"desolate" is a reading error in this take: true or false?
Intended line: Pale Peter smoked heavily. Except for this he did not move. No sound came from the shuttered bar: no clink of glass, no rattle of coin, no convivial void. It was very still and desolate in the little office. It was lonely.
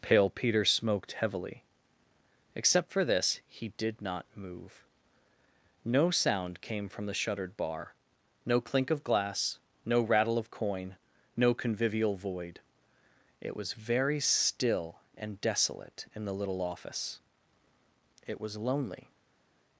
false